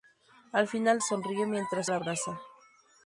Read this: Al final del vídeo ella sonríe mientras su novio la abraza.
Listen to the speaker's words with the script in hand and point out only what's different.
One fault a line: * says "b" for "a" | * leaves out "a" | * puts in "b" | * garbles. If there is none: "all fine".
* leaves out "del vídeo ella"
* leaves out "su novio"